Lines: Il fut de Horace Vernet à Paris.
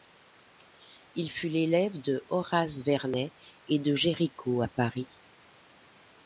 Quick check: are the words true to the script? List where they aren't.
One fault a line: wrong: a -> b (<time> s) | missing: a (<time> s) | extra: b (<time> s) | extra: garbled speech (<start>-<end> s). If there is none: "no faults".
extra: l'élève (1.5 s)
extra: et de Géricault (3.7 s)